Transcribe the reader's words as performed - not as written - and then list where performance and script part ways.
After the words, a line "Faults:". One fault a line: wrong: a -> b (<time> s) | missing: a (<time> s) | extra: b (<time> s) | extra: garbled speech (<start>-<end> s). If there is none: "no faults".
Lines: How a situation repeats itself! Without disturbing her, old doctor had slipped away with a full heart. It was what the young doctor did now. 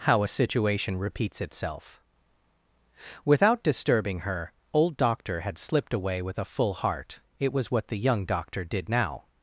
How a situation repeats itself! Without disturbing her, old doctor had slipped away with a full heart. It was what the young doctor did now.
Faults:
no faults